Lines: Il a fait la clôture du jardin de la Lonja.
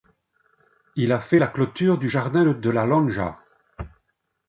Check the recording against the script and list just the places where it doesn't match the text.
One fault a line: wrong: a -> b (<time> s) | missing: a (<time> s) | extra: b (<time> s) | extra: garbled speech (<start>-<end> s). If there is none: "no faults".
no faults